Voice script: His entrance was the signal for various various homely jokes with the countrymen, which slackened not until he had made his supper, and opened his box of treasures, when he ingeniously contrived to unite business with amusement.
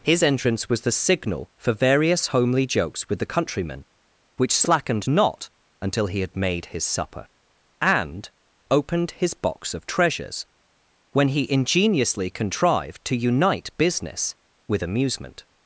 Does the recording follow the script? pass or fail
fail